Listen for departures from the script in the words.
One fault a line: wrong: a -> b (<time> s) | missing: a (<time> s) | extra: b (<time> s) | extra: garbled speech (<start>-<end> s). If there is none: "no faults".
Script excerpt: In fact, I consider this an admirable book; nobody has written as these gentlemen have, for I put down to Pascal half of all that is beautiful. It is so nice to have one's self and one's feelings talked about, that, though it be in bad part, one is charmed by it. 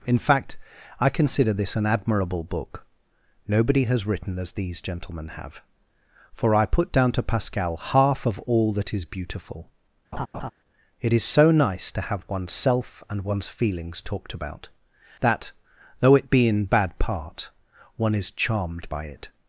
no faults